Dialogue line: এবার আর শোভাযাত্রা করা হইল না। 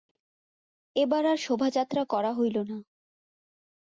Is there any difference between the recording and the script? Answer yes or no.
no